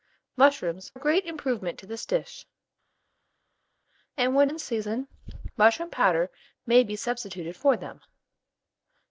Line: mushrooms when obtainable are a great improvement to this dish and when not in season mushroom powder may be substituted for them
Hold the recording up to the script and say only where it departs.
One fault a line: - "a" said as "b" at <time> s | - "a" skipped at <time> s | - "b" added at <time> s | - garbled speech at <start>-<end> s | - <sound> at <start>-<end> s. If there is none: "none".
- "when obtainable are" skipped at 0.9 s
- "not" skipped at 4.5 s